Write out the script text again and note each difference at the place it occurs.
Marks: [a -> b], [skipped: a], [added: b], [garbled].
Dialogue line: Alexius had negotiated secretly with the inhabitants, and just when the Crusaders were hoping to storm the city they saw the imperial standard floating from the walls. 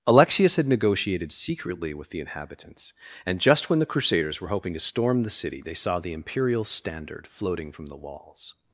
Alexius had negotiated secretly with the inhabitants, and just when the Crusaders were hoping to storm the city they saw the imperial standard floating from the walls.